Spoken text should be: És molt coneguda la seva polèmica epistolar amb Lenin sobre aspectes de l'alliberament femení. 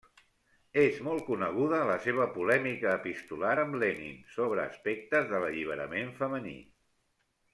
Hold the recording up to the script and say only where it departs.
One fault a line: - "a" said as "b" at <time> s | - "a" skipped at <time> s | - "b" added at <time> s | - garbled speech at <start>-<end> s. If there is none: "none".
none